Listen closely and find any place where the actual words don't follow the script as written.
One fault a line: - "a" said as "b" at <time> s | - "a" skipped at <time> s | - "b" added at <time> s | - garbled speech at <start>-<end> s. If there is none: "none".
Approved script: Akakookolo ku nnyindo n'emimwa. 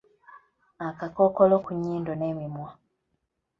none